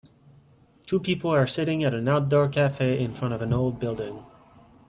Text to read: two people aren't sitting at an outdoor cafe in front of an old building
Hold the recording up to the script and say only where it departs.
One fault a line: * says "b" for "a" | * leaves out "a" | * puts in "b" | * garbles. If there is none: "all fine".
* says "are" for "aren't"